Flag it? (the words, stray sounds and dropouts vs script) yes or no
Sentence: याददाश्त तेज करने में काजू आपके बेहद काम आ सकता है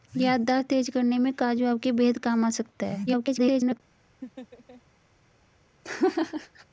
yes